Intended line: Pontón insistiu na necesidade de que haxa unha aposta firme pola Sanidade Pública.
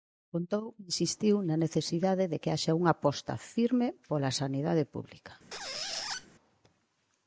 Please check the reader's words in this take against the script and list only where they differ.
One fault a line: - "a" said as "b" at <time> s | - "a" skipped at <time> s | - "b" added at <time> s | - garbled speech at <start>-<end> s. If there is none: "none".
none